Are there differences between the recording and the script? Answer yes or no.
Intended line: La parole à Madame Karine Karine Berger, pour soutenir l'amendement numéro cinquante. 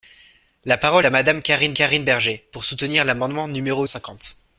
no